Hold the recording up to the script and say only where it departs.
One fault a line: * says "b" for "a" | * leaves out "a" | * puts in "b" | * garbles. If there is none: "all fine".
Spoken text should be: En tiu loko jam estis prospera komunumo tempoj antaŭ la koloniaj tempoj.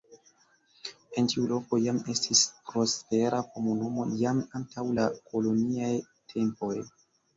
* says "jam" for "tempoj"